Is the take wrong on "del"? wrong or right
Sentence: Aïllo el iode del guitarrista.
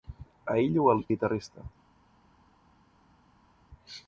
wrong